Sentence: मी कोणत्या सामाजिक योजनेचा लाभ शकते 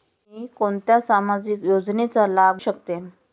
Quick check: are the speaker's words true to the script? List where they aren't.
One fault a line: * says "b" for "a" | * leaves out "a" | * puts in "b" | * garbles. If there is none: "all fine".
all fine